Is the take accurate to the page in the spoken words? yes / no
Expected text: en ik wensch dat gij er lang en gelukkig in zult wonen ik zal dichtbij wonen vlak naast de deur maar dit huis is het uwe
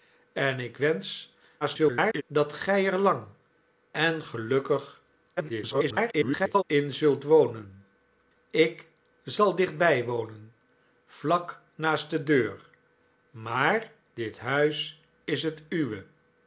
no